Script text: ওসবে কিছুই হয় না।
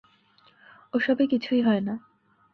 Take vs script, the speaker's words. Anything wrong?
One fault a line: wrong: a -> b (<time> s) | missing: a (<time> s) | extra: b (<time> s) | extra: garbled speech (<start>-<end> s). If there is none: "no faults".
no faults